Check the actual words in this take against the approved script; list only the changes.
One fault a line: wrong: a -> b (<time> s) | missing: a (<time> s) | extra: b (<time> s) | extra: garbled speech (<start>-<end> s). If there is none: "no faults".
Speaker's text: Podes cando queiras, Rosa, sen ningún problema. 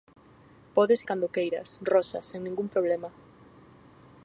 no faults